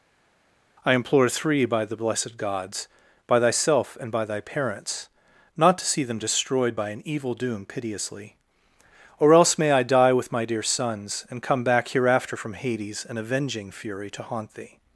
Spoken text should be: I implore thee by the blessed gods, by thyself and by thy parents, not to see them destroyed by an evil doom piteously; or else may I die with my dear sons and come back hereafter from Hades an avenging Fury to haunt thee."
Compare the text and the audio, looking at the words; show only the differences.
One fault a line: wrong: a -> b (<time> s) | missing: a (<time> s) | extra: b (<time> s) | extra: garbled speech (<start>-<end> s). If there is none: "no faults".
wrong: thee -> three (1.3 s)